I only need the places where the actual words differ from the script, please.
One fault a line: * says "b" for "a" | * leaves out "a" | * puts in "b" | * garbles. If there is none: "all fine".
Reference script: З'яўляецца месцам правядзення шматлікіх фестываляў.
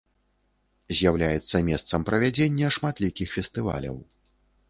all fine